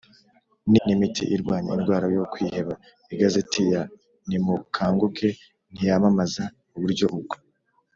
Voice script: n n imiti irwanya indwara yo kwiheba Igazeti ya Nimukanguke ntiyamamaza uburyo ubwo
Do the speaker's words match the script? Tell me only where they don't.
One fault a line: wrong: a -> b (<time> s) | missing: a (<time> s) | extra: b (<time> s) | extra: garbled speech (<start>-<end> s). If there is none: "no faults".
no faults